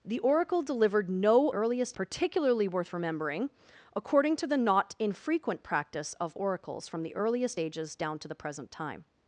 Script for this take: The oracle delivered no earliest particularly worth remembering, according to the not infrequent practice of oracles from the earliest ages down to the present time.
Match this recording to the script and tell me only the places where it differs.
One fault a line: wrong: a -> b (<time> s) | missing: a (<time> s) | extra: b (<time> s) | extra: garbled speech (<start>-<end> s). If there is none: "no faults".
no faults